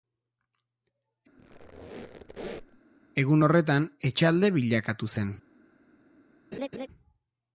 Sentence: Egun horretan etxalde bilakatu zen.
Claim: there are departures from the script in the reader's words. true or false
false